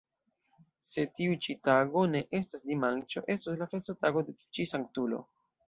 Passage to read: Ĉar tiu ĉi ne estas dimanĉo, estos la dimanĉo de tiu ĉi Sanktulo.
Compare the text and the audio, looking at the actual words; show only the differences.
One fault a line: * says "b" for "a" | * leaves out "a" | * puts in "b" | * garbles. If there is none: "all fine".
* says "Se" for "Ĉar"
* puts in "tago"
* says "festotago" for "dimanĉo"